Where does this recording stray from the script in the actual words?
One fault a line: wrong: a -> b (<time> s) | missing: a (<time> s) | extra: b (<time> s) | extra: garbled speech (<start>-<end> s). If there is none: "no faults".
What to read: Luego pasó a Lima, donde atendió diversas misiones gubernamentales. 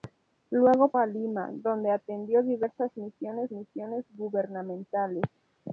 missing: pasó (0.9 s)
extra: misiones (3.5 s)